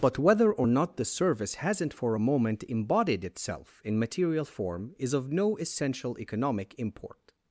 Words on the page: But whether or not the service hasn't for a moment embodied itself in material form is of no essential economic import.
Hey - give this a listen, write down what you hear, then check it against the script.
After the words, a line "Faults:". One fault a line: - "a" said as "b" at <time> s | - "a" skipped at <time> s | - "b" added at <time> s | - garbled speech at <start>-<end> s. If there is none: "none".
But whether or not the service hasn't for a moment embodied itself in material form is of no essential economic import.
Faults:
none